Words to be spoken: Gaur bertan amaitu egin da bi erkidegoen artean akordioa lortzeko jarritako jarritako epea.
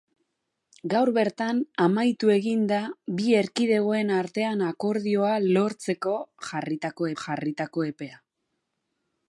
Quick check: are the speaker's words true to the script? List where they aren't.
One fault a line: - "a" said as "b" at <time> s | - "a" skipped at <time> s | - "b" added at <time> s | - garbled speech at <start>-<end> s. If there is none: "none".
none